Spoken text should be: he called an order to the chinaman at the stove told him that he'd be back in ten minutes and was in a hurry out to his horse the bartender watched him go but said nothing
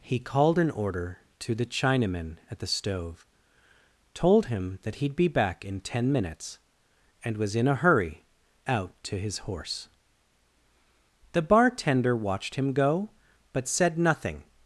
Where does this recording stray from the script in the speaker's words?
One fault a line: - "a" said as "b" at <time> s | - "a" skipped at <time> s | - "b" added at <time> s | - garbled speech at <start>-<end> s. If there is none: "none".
none